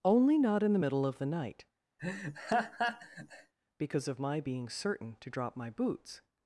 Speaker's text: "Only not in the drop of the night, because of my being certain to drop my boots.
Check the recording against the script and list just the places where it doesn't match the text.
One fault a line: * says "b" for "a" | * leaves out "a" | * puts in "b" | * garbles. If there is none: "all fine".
* says "middle" for "drop"